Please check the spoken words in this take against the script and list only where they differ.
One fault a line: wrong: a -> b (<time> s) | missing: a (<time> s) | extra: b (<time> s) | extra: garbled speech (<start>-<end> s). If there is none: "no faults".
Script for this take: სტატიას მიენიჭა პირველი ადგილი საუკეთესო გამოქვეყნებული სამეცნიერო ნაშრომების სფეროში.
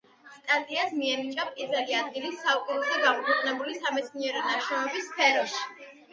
no faults